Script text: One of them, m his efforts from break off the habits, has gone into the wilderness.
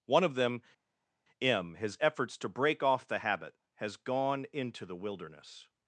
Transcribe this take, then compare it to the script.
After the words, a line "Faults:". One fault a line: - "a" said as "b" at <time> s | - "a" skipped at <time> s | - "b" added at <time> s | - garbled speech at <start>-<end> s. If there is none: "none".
One of them, m his efforts to break off the habit, has gone into the wilderness.
Faults:
- "from" said as "to" at 2.4 s
- "habits" said as "habit" at 3.2 s